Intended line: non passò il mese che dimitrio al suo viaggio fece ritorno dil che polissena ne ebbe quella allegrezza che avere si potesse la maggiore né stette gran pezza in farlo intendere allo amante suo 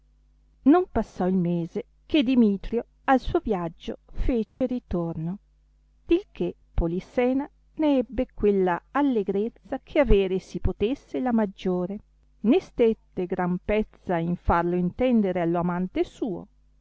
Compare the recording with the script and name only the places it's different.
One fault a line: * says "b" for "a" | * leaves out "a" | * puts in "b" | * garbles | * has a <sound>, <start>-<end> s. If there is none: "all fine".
* has a dropout, 4.5-4.6 s